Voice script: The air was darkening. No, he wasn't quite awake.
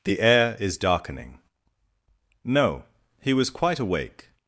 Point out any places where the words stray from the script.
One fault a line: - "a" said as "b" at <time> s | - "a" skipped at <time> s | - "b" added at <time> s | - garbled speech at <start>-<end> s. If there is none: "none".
- "was" said as "is" at 0.6 s
- "wasn't" said as "was" at 3.3 s